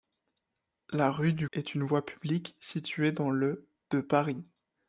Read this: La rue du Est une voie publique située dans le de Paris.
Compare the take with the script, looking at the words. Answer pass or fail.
pass